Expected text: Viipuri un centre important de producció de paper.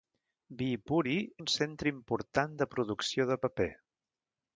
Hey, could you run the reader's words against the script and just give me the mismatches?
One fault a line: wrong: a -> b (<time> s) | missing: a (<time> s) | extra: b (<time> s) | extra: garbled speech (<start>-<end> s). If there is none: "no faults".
no faults